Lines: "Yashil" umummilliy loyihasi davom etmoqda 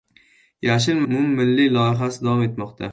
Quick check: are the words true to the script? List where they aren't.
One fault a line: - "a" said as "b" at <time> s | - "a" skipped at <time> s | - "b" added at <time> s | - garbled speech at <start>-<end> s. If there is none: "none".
none